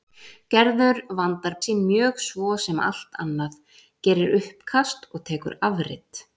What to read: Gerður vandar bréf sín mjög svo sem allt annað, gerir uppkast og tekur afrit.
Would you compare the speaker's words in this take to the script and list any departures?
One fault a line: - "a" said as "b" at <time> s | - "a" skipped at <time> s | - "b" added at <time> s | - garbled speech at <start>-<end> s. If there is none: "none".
- "bréf" skipped at 1.6 s